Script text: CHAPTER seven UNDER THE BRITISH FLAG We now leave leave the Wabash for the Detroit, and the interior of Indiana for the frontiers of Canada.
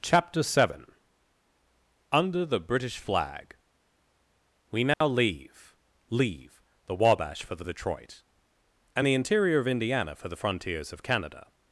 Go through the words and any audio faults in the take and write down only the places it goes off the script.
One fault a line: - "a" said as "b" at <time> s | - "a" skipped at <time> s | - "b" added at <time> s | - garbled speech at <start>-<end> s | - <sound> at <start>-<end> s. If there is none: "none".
- dropout at 4.9-5.0 s